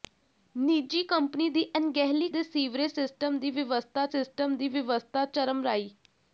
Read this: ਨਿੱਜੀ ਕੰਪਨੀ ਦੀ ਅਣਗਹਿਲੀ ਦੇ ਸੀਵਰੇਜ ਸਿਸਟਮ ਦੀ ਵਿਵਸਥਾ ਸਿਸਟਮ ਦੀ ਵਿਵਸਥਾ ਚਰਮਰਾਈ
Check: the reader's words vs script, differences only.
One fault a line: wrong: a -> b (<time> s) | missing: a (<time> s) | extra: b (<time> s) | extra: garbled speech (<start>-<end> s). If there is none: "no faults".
no faults